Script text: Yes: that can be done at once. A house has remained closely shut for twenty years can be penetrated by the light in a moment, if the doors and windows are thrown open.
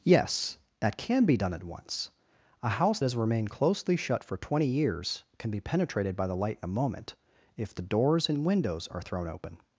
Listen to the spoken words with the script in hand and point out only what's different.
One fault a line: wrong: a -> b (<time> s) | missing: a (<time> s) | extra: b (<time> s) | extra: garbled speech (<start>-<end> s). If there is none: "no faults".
no faults